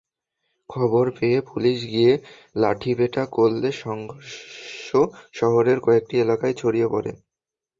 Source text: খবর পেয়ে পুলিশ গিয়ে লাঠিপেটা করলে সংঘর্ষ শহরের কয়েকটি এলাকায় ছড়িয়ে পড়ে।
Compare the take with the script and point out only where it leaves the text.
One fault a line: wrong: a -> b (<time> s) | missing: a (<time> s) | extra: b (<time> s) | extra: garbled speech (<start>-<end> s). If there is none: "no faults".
no faults